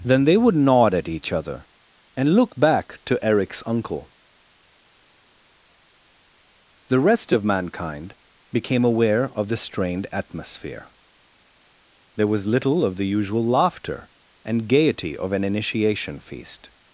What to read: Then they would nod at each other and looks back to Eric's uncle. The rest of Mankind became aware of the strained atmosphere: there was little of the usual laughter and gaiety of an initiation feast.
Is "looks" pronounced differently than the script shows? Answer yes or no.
yes